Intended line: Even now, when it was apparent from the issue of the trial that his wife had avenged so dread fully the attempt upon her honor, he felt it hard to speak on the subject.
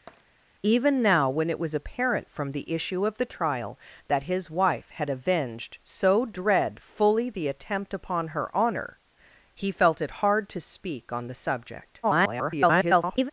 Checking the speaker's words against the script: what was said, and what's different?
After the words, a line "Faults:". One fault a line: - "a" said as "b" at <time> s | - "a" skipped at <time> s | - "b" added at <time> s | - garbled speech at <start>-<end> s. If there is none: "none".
Even now, when it was apparent from the issue of the trial that his wife had avenged so dread fully the attempt upon her honor, he felt it hard to speak on the subject. [garbled]
Faults:
- garbled speech at 12.0-13.3 s